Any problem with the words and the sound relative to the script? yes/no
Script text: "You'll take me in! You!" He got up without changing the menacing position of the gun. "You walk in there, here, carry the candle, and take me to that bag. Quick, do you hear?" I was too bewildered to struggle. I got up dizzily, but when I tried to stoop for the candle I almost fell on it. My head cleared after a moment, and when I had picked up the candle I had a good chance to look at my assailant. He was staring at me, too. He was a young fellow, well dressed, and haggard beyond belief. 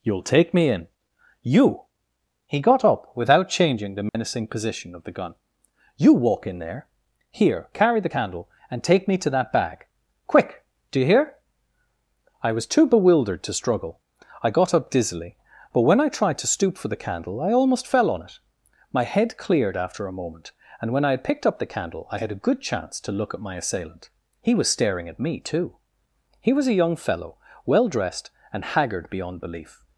yes